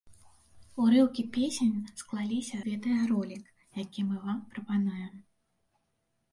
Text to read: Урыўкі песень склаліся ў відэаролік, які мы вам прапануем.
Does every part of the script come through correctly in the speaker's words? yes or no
no